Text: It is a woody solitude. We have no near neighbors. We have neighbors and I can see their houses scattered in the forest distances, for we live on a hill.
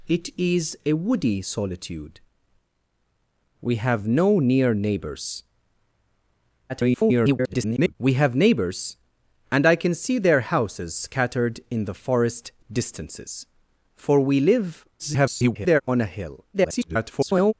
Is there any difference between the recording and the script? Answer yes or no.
yes